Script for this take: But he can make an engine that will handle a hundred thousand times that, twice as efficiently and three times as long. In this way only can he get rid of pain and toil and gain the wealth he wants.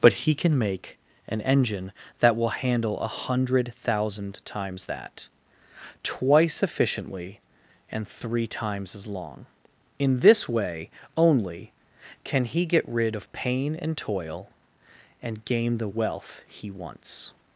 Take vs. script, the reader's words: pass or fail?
fail